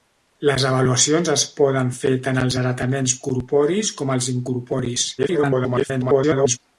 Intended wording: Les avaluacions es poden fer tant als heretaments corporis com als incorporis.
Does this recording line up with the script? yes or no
no